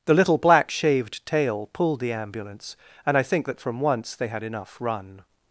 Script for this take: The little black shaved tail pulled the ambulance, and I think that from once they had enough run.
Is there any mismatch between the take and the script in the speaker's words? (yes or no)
no